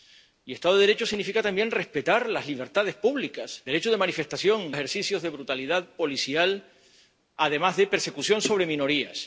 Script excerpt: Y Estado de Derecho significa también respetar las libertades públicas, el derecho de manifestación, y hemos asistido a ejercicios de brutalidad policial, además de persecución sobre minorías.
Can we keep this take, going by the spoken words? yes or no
no